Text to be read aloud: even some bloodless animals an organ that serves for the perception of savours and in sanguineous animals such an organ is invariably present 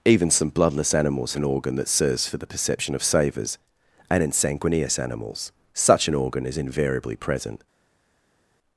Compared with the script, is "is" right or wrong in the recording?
right